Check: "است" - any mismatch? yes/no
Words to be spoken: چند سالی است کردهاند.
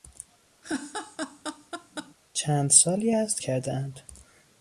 no